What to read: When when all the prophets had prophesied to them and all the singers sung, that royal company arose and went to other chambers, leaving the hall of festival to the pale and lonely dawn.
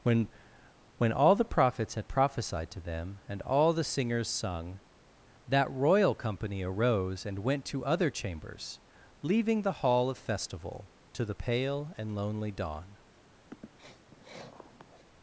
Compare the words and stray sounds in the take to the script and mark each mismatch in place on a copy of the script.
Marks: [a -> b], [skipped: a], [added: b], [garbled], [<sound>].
When when all the prophets had prophesied to them and all the singers sung, that royal company arose and went to other chambers, leaving the hall of festival to the pale and lonely dawn. [sniff]